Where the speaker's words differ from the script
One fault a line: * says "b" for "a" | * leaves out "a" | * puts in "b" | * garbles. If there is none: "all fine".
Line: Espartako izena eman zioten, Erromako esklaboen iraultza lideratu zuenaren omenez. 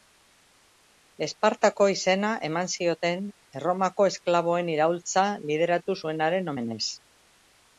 all fine